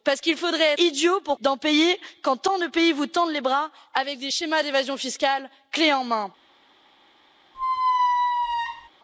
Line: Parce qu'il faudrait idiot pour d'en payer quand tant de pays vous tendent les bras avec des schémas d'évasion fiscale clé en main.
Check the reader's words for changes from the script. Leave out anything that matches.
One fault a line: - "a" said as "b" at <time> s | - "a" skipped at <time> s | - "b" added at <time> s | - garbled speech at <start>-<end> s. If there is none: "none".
none